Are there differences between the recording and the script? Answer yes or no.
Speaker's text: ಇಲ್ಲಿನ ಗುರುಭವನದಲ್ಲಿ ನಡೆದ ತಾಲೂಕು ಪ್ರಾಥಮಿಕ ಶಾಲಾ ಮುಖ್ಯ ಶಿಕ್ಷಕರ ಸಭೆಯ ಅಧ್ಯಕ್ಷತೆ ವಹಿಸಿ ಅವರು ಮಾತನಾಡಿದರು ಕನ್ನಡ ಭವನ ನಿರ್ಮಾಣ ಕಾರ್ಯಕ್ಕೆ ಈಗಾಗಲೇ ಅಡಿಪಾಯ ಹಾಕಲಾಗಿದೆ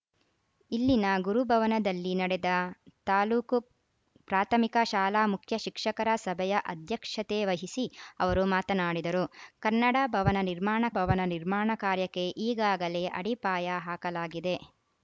yes